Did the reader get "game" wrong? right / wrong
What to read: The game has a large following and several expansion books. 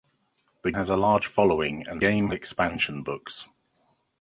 wrong